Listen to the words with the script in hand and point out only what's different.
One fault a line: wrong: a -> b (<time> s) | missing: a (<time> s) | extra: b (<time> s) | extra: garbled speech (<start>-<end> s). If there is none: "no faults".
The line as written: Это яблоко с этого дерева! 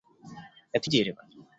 missing: яблоко с этого (0.9 s)